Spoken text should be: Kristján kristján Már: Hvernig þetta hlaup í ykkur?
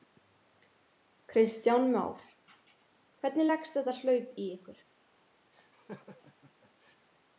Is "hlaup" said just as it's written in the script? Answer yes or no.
yes